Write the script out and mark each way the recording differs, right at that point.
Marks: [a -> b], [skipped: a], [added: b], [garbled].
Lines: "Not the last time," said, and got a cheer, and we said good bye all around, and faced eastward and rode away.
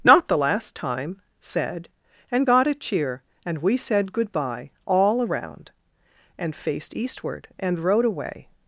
"Not the last time," said, and got a cheer, and we said good bye all around, and faced eastward and rode away.